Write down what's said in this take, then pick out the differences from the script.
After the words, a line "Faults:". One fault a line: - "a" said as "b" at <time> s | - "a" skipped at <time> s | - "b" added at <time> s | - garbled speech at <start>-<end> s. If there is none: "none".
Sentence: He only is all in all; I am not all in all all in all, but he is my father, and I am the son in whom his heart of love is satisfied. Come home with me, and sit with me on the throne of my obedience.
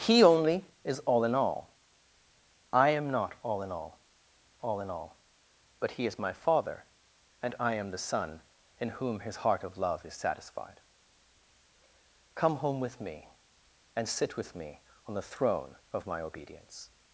He only is all in all; I am not all in all all in all, but he is my father, and I am the son in whom his heart of love is satisfied. Come home with me, and sit with me on the throne of my obedience.
Faults:
none